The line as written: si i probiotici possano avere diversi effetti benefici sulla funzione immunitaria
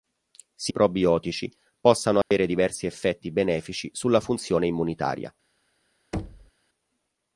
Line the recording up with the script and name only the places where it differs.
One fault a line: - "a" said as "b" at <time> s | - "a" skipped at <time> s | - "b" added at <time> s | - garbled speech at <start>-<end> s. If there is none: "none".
none